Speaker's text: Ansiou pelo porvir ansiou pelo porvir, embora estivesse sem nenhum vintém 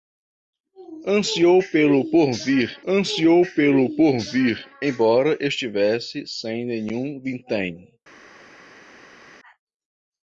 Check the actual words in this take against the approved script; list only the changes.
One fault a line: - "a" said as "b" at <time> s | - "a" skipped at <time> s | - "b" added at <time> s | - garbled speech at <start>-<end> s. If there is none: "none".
none